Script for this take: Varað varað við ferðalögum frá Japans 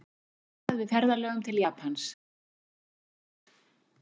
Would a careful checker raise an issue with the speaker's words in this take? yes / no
yes